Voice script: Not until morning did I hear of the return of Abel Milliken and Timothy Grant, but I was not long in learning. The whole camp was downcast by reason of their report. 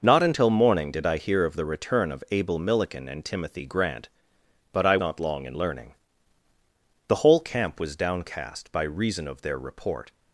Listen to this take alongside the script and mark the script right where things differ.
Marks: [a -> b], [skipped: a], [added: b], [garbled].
Not until morning did I hear of the return of Abel Milliken and Timothy Grant, but I [skipped: was] not long in learning. The whole camp was downcast by reason of their report.